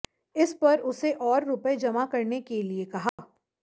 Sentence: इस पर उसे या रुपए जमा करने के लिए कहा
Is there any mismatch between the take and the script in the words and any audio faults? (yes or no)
yes